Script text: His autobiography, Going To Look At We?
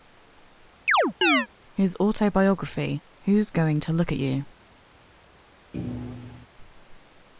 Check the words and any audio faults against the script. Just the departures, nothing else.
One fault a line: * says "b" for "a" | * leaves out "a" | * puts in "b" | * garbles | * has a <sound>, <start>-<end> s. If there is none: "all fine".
* has a chirp, 0.9-1.5 s
* puts in "Who's"
* says "You" for "We"
* has a thud, 5.7-6.5 s